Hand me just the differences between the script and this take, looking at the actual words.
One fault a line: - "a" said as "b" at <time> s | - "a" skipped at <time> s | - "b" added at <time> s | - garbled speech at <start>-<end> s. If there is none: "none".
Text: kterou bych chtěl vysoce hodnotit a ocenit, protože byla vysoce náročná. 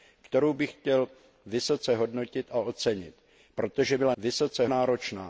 none